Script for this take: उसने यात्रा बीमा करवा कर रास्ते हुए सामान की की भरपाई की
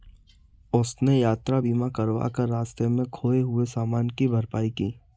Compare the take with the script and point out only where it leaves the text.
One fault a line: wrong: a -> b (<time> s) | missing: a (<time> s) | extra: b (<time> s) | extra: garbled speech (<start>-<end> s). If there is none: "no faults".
extra: में खोए (2.9 s)
missing: की (4.3 s)